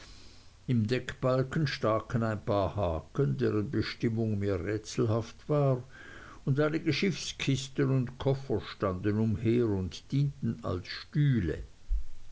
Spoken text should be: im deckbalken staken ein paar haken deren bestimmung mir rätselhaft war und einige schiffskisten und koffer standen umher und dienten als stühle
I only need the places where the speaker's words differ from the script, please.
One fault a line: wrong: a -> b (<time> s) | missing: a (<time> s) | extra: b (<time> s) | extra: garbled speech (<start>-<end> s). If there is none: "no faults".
no faults